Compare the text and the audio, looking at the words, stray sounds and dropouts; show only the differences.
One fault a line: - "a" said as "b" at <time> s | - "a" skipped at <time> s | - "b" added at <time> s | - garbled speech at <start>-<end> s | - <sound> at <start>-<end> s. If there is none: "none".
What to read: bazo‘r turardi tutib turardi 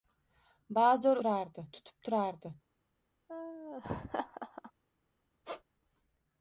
- laugh at 3.3-4.7 s
- squeak at 5.4-5.6 s